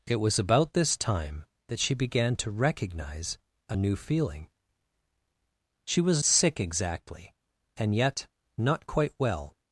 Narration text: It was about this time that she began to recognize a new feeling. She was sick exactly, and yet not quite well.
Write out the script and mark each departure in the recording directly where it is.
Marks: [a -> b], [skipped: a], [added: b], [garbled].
It was about this time that she began to recognize a new feeling. She was sick exactly, and yet not quite well.